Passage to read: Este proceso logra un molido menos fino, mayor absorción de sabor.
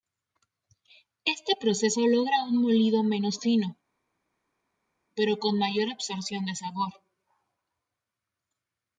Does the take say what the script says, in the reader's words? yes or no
no